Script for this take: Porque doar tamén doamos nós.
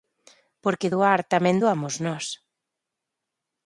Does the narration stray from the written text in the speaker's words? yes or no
no